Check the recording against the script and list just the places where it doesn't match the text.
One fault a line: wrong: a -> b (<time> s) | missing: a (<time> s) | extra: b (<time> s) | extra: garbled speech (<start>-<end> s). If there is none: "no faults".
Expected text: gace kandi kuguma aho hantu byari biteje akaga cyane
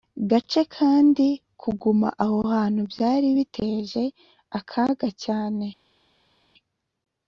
no faults